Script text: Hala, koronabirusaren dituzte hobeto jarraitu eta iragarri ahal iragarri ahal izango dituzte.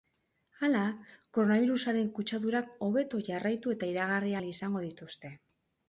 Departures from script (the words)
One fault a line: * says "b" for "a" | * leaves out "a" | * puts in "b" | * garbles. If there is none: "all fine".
* says "kutsadurak" for "dituzte"
* leaves out "iragarri ahal"